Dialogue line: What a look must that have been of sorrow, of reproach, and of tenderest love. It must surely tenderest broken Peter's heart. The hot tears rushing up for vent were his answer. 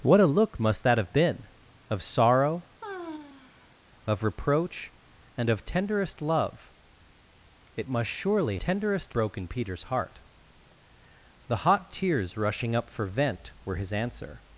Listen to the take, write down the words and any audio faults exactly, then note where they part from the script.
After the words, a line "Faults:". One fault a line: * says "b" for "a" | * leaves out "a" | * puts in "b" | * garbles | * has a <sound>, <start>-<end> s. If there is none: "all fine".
What a look must that have been of sorrow, of reproach, and of tenderest love. It must surely tenderest broken Peter's heart. The hot tears rushing up for vent were his answer.
Faults:
* has a sigh, 2.8-3.8 s